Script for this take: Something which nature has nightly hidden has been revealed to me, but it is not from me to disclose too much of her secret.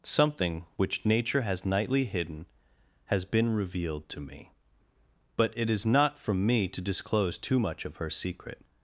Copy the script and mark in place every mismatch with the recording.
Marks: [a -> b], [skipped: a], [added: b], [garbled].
Something which nature has nightly hidden has been revealed to me, but it is not from me to disclose too much of her secret.